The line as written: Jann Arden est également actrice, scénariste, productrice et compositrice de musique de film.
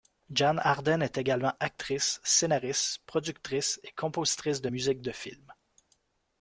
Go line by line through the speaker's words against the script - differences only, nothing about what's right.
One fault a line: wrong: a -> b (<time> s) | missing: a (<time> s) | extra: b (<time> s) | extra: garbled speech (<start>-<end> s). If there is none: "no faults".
no faults